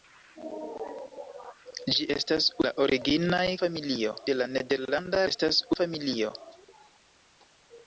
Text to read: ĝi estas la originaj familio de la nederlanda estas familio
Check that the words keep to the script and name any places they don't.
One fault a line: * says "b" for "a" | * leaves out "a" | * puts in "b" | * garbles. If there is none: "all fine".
all fine